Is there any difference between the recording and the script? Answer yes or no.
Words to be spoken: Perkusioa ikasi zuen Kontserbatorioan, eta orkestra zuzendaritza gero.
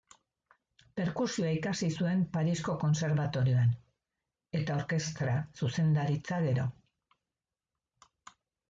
yes